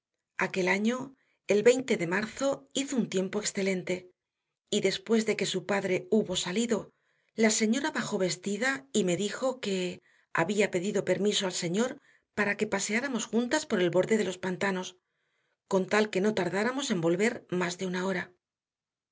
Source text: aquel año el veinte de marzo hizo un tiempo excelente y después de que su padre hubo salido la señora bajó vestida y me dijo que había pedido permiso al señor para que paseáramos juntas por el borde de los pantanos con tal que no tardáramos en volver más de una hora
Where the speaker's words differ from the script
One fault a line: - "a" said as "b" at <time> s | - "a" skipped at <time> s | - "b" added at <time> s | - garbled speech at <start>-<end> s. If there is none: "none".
none